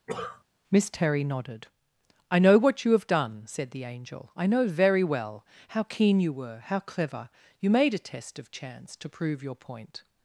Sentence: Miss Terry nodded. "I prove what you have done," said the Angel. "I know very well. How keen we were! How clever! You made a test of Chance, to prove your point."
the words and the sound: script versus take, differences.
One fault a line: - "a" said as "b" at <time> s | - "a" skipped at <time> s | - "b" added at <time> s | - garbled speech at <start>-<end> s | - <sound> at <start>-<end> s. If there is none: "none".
- cough at 0.1-0.4 s
- "prove" said as "know" at 2.4 s
- "we" said as "you" at 6.2 s